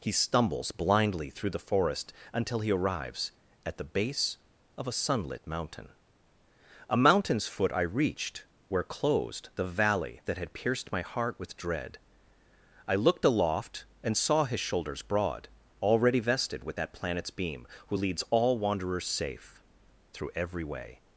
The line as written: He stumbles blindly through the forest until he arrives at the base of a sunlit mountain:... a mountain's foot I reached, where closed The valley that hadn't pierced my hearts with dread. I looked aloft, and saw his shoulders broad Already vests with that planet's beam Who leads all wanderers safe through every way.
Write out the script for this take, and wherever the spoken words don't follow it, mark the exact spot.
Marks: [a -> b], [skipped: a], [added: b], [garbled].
He stumbles blindly through the forest until he arrives at the base of a sunlit mountain:... a mountain's foot I reached, where closed The valley that [hadn't -> had] pierced my [hearts -> heart] with dread. I looked aloft, and saw his shoulders broad Already [vests -> vested] with that planet's beam Who leads all wanderers safe through every way.